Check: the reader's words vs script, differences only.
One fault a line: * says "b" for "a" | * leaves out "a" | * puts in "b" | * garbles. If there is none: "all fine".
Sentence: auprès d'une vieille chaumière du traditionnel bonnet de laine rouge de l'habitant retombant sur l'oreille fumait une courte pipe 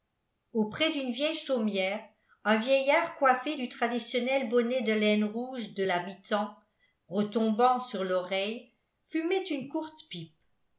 * puts in "un vieillard coiffé"